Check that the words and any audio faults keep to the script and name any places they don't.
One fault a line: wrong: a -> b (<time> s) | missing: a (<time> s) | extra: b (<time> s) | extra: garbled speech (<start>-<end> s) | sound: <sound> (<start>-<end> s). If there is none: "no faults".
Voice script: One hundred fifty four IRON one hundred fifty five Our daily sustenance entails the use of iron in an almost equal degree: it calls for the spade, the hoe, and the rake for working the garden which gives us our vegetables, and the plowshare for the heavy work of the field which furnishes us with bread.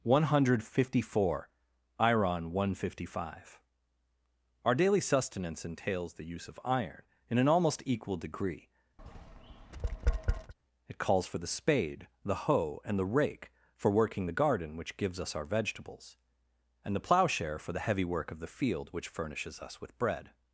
sound: tap (9.0-10.5 s)